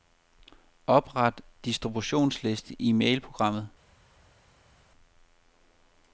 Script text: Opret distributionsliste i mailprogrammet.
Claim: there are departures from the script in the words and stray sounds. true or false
false